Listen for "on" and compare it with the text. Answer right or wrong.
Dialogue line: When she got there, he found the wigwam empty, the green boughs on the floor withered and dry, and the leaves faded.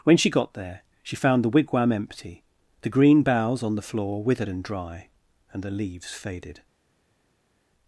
right